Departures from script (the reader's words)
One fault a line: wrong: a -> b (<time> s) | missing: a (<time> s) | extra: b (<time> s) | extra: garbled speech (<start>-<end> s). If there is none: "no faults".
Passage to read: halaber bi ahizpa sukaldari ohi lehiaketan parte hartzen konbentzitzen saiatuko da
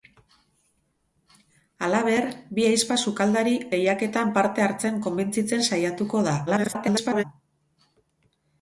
missing: ohi (3.5 s)
extra: garbled speech (6.5-7.2 s)